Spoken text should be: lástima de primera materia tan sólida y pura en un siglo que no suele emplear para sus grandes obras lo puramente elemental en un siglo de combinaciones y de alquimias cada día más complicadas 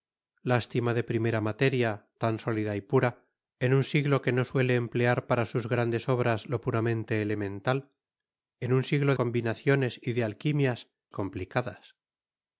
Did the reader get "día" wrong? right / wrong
wrong